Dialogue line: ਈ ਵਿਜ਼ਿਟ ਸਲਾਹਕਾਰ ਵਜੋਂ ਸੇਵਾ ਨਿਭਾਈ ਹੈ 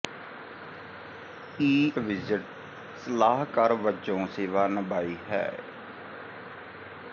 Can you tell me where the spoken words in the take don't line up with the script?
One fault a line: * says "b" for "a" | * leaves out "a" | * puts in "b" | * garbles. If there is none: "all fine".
all fine